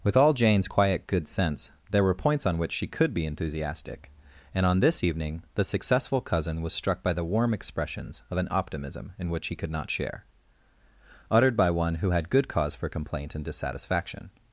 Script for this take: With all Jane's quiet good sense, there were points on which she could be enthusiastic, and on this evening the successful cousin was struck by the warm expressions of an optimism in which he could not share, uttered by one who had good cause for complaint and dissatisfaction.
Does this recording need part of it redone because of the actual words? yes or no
no